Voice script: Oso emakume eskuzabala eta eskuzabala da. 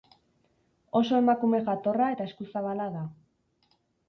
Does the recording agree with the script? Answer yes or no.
no